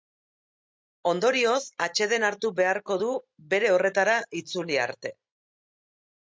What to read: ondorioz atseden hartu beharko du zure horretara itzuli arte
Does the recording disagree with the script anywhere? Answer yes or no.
yes